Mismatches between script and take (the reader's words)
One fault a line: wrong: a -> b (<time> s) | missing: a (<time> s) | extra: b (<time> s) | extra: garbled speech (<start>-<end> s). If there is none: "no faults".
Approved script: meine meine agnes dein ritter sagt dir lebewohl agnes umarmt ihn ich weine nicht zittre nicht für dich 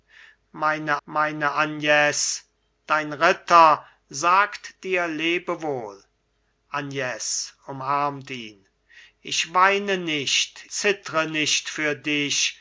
no faults